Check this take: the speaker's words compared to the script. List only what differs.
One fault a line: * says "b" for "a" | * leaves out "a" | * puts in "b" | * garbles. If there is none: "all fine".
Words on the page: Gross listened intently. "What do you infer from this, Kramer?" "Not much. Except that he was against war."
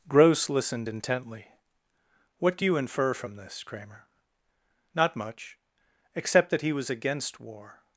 all fine